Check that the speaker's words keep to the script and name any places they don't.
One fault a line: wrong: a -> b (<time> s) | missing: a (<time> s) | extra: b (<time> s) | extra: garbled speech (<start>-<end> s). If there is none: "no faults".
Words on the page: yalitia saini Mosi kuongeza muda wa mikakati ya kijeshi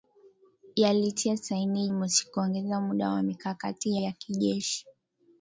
no faults